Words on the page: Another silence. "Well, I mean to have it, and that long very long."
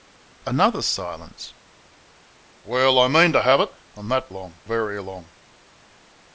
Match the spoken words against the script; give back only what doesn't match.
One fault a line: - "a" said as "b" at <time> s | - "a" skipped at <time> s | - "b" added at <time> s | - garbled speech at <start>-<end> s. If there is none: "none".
none